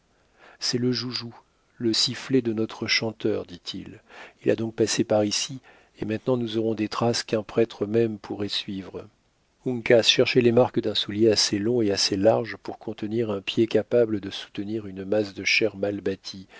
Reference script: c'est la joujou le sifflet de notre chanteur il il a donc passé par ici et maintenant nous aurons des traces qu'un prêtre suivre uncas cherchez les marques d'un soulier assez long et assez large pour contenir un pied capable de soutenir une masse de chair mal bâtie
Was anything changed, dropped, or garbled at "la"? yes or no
yes